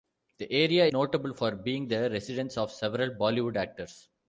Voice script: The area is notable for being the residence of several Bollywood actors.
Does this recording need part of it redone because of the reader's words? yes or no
yes